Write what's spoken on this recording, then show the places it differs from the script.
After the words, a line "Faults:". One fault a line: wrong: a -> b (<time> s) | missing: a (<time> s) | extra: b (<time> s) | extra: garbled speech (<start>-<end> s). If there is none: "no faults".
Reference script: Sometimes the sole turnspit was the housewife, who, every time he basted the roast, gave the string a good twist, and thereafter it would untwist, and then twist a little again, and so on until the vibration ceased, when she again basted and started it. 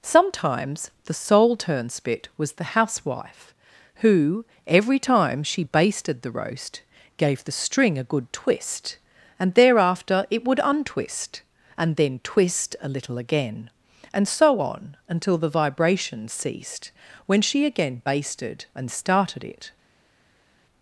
Sometimes the sole turnspit was the housewife, who, every time she basted the roast, gave the string a good twist, and thereafter it would untwist, and then twist a little again, and so on until the vibration ceased, when she again basted and started it.
Faults:
wrong: he -> she (5.4 s)